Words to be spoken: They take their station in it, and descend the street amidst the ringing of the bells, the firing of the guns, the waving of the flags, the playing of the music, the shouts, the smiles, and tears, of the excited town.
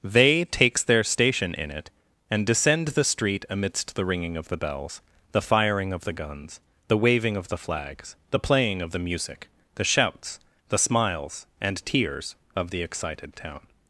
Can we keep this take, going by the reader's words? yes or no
no